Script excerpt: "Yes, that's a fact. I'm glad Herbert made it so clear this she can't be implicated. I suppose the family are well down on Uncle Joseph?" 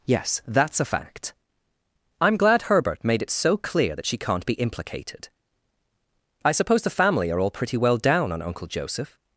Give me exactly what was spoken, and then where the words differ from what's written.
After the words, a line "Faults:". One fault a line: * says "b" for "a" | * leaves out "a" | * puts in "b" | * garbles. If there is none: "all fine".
"Yes, that's a fact. I'm glad Herbert made it so clear that she can't be implicated. I suppose the family are all pretty well down on Uncle Joseph?"
Faults:
* says "that" for "this"
* puts in "all pretty"